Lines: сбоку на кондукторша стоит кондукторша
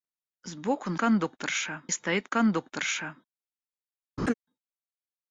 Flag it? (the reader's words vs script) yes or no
no